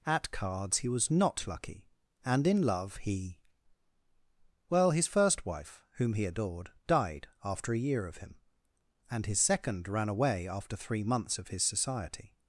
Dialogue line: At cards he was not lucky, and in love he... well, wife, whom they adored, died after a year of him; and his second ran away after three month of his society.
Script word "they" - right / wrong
wrong